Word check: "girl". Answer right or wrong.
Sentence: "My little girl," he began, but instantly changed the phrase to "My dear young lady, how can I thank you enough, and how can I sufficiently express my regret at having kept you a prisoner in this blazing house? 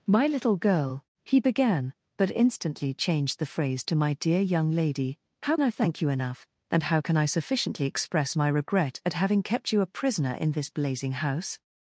right